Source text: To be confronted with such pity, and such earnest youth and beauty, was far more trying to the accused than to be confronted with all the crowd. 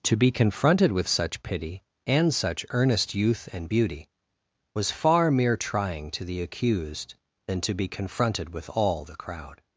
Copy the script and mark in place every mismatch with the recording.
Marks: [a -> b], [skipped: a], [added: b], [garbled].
To be confronted with such pity, and such earnest youth and beauty, was far [more -> mere] trying to the accused than to be confronted with all the crowd.